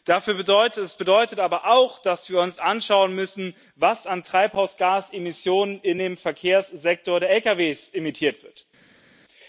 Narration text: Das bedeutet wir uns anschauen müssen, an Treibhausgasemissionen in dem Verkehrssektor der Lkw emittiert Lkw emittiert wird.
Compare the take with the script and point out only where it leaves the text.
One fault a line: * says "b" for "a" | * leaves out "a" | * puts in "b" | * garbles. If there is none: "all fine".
* puts in "aber auch dass"
* puts in "was"
* leaves out "Lkw emittiert"